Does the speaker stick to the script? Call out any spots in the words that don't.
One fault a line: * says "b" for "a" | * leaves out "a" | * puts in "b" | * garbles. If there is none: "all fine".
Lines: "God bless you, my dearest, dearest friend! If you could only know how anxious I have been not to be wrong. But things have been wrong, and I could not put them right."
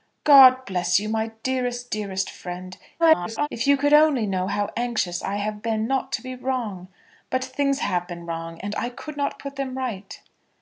* garbles